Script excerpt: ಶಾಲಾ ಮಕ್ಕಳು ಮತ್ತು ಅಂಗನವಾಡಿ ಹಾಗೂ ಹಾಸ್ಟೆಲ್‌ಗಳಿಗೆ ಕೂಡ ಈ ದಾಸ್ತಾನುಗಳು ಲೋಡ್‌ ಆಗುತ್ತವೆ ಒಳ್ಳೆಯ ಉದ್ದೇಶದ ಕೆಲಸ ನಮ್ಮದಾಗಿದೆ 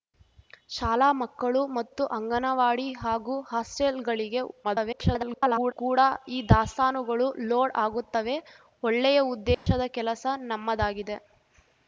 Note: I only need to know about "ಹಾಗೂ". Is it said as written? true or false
true